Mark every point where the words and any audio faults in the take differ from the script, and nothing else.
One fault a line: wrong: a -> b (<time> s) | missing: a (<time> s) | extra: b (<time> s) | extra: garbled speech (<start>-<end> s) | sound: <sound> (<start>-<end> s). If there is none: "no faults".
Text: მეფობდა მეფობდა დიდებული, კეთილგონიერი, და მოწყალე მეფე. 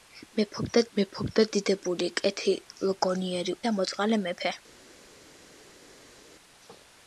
no faults